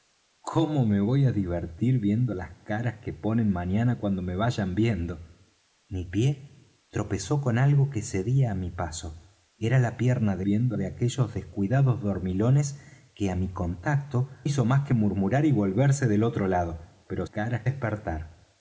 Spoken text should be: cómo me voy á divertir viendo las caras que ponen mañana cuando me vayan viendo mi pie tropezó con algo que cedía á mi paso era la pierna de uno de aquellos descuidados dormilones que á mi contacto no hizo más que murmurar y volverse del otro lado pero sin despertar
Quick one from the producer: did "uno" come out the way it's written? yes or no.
no